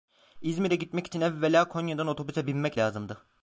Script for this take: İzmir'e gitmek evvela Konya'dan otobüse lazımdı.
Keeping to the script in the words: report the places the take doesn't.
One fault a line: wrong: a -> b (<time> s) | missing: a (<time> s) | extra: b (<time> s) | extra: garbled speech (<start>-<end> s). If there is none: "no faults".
extra: için (1.1 s)
extra: binmek (2.5 s)